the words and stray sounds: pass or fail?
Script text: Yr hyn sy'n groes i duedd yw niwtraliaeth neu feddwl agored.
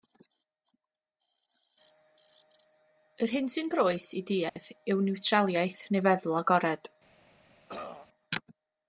fail